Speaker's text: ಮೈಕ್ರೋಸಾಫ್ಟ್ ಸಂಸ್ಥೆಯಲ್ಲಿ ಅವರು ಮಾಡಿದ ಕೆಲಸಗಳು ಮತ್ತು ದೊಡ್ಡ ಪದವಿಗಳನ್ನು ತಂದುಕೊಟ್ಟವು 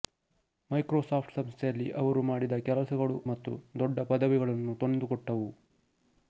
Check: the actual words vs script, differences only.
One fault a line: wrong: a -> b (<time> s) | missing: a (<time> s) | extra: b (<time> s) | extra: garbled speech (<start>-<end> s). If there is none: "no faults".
no faults